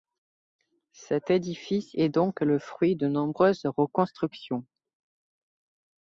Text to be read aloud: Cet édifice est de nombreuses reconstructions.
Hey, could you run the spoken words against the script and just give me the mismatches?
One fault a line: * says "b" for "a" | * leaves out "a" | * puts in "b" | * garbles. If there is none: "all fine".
* puts in "donc le fruit"